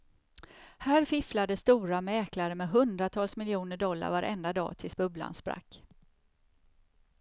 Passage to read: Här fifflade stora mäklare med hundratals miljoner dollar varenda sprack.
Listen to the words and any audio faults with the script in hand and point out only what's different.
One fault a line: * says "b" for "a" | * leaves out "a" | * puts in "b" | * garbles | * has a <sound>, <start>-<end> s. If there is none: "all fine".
* puts in "dag tills bubblan"